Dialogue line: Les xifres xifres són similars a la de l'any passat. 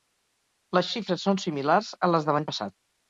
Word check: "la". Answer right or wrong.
wrong